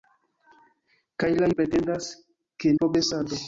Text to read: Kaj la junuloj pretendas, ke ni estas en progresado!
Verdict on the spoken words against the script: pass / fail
fail